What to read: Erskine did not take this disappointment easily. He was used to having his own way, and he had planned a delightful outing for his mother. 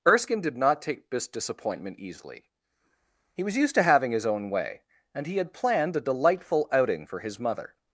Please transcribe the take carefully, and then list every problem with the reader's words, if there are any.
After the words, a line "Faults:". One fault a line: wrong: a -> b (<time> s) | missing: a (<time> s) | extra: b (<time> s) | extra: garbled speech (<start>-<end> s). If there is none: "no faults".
Erskine did not take this disappointment easily. He was used to having his own way, and he had planned a delightful outing for his mother.
Faults:
no faults